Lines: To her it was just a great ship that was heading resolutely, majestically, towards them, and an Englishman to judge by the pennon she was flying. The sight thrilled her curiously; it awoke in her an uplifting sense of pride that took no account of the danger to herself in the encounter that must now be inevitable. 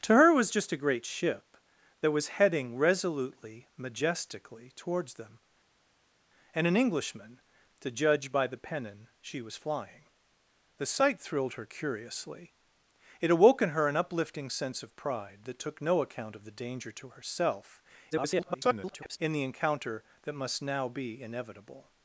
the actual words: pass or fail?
fail